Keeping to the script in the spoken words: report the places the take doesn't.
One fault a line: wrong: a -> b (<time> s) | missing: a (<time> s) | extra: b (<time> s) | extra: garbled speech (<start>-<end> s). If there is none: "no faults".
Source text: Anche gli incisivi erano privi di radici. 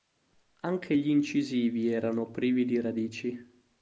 no faults